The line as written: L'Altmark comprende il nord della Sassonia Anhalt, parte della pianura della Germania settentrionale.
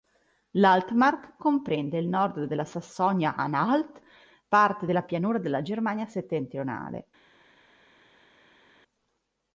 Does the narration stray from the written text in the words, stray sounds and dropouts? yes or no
no